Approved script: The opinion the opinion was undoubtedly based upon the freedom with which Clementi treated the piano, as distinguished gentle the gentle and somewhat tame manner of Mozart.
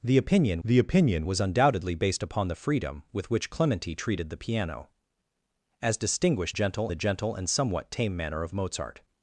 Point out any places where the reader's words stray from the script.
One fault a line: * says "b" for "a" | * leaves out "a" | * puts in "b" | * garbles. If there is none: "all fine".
all fine